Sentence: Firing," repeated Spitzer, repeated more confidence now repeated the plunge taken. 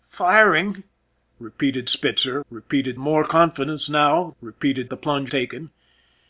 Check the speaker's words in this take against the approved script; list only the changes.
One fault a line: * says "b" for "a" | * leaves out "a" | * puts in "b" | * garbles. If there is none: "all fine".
all fine